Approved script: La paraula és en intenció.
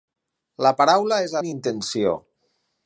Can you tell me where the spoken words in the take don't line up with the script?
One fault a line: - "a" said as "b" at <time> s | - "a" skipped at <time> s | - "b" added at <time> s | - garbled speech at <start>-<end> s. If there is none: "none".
none